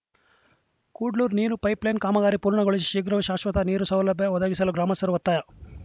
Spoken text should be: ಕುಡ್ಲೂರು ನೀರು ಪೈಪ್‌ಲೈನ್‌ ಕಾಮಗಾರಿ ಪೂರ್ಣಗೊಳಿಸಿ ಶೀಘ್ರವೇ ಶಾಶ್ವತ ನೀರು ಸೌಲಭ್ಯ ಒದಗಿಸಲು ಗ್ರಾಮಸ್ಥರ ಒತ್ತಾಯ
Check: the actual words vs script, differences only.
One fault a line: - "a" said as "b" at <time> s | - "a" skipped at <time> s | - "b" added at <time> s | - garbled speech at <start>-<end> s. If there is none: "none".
none